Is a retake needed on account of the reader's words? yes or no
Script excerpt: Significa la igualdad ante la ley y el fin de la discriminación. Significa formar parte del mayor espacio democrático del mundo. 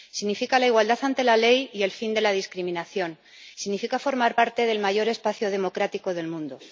no